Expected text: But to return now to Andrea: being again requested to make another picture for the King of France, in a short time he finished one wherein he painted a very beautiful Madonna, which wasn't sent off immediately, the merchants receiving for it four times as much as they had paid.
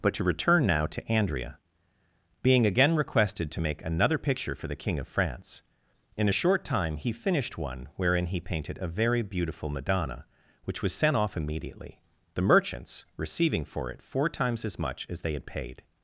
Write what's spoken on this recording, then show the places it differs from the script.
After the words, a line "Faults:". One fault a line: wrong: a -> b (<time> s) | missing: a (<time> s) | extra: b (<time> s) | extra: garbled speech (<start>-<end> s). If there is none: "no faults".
But to return now to Andrea: being again requested to make another picture for the King of France, in a short time he finished one wherein he painted a very beautiful Madonna, which was sent off immediately, the merchants receiving for it four times as much as they had paid.
Faults:
wrong: wasn't -> was (10.8 s)